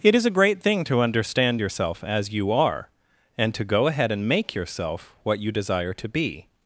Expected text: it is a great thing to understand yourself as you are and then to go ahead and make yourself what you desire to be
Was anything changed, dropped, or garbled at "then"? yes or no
yes